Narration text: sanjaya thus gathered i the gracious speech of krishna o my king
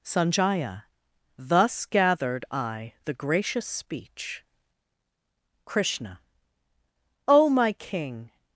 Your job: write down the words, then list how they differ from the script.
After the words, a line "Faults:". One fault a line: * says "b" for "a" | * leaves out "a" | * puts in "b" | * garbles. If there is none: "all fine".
sanjaya thus gathered i the gracious speech krishna o my king
Faults:
* leaves out "of"